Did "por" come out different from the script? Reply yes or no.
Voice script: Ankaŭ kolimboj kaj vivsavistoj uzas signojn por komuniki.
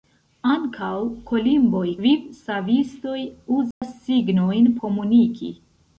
yes